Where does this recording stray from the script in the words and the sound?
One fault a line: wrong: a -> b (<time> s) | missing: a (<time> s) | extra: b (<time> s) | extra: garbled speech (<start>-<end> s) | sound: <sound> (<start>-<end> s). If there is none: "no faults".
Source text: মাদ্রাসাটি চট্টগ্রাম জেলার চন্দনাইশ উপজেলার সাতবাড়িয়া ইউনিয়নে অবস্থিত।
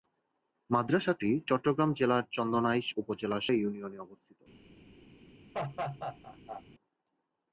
missing: সাতবাড়িয়া (3.5 s)
sound: laugh (5.5-6.6 s)